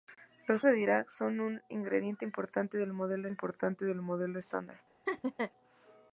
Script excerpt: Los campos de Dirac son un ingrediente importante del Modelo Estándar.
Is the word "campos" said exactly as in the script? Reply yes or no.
no